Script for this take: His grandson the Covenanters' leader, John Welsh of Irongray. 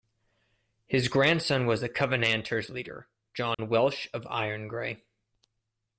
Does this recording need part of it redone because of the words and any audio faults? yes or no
yes